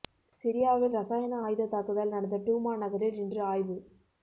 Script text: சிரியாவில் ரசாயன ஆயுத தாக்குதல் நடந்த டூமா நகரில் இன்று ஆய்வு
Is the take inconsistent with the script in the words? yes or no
no